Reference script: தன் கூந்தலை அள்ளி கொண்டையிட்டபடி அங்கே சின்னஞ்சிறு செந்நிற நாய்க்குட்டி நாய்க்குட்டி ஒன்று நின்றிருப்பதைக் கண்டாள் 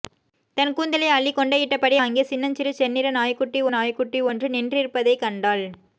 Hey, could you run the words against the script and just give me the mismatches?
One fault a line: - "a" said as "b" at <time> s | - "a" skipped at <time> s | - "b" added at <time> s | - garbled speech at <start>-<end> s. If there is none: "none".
none